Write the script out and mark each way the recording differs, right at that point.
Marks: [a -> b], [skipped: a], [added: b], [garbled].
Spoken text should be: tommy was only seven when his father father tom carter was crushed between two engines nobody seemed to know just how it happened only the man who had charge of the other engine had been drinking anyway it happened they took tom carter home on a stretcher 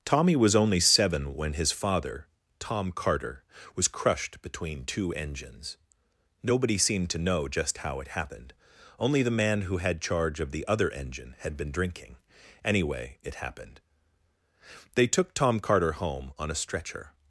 tommy was only seven when his father [skipped: father] tom carter was crushed between two engines nobody seemed to know just how it happened only the man who had charge of the other engine had been drinking anyway it happened they took tom carter home on a stretcher